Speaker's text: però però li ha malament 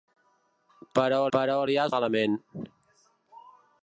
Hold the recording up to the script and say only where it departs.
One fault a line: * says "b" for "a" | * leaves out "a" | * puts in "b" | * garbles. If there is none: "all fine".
all fine